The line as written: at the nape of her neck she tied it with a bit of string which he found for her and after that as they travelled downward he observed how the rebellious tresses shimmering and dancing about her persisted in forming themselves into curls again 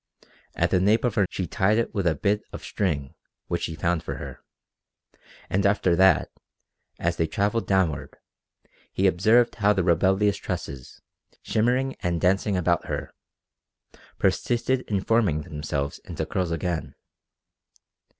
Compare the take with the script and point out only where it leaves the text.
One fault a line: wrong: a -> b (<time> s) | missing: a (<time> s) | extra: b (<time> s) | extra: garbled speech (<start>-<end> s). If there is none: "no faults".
missing: neck (1.3 s)